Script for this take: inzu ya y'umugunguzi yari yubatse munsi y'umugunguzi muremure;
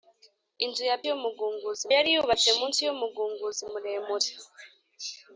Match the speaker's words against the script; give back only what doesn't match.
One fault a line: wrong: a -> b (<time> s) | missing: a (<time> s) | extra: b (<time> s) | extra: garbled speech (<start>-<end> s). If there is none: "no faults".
no faults